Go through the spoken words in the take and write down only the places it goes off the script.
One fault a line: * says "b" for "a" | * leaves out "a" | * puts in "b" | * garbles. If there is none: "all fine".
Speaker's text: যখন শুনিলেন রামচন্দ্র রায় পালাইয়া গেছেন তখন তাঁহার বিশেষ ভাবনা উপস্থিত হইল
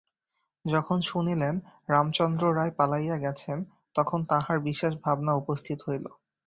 all fine